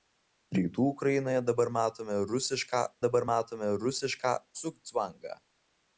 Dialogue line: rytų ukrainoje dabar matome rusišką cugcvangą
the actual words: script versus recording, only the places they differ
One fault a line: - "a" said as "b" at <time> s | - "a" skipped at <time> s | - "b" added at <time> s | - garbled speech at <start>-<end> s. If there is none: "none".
- "dabar matome rusišką" added at 3.1 s